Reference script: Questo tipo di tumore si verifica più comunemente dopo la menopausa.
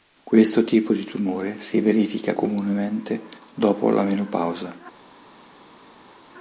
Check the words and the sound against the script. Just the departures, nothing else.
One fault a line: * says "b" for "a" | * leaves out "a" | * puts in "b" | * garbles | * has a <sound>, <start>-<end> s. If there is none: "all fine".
* leaves out "più"